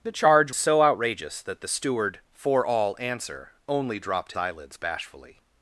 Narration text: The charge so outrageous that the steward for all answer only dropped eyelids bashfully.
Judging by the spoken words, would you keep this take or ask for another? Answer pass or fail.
pass